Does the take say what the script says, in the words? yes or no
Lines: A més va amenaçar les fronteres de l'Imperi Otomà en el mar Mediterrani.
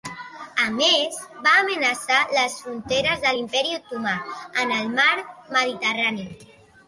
yes